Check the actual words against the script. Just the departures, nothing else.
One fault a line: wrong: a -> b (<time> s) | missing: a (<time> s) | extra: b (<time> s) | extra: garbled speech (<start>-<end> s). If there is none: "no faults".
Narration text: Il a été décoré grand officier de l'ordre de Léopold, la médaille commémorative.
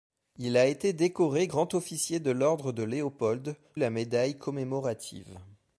no faults